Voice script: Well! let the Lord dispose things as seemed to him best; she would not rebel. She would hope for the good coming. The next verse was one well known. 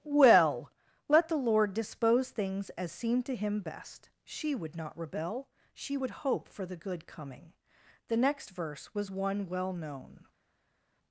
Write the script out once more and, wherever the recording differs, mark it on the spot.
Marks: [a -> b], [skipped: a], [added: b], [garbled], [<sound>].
Well! let the Lord dispose things as seemed to him best; she would not rebel. She would hope for the good coming. The next verse was one well known.